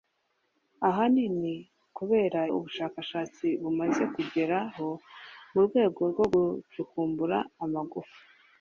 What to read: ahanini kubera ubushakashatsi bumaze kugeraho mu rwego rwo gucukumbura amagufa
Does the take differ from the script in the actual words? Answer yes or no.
no